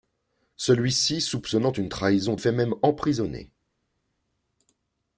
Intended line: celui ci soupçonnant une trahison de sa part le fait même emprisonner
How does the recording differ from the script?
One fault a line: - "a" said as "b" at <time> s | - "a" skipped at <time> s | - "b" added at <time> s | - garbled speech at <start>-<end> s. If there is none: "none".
- "sa part le" skipped at 2.4 s